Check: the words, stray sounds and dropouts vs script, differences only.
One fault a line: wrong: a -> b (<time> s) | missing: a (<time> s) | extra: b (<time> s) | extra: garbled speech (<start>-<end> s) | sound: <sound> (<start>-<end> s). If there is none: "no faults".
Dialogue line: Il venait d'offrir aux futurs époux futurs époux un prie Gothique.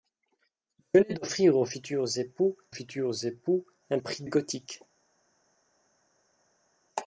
no faults